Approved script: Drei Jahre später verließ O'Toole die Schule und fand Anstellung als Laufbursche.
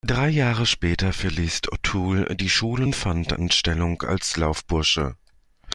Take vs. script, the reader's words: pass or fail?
pass